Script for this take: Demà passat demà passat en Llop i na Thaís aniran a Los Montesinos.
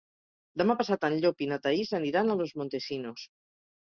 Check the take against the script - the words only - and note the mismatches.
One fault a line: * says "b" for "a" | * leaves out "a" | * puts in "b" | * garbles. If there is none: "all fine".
* leaves out "demà passat"